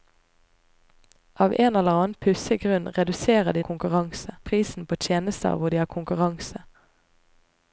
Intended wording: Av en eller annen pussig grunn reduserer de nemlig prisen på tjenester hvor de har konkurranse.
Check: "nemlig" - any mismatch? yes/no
yes